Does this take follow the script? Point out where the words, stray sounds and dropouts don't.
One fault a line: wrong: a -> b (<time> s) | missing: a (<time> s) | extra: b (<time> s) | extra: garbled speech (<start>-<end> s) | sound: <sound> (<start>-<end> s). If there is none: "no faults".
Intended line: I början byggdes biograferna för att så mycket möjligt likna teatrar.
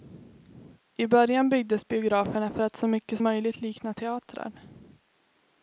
no faults